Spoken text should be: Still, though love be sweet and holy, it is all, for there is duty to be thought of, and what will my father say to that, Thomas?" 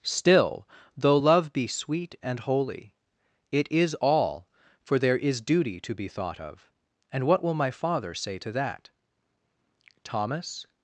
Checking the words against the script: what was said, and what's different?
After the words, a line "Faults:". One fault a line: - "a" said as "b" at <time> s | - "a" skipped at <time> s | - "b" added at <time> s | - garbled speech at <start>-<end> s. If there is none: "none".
Still, though love be sweet and holy, it is all, for there is duty to be thought of, and what will my father say to that, Thomas?"
Faults:
none